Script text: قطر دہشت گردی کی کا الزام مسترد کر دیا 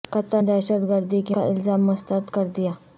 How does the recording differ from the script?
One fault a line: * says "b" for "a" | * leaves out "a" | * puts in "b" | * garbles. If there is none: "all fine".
all fine